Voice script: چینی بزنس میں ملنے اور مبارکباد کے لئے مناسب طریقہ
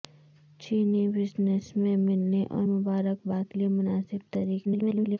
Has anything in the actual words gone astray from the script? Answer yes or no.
yes